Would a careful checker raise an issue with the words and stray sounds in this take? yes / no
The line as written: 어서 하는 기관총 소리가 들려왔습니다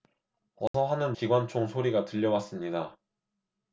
yes